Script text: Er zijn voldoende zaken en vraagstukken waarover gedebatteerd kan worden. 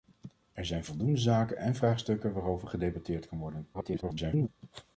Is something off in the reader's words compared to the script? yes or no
yes